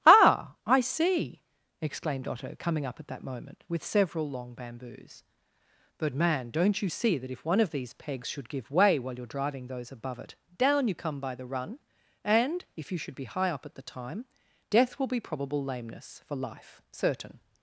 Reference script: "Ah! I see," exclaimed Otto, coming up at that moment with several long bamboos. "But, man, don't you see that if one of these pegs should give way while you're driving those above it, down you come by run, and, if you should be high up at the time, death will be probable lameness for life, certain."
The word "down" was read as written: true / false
true